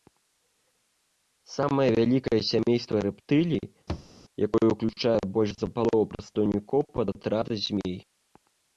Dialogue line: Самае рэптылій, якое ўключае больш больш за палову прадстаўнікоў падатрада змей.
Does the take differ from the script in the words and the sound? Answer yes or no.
yes